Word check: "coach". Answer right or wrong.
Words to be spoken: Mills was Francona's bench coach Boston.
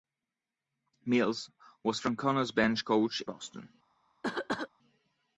right